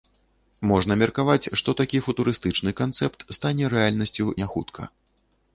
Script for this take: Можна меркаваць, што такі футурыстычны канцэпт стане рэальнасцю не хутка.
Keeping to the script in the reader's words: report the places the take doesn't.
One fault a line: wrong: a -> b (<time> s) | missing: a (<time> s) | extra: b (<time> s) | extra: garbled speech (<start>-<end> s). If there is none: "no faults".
no faults